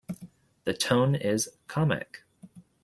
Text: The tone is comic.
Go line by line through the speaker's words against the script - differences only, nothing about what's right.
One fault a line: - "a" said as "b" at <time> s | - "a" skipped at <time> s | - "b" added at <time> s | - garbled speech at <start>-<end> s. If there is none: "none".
none